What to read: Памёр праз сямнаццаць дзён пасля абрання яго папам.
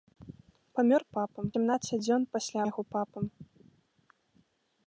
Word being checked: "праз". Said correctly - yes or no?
no